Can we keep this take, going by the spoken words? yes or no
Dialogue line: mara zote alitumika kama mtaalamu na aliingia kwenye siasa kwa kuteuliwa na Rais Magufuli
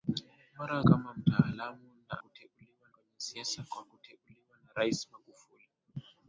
no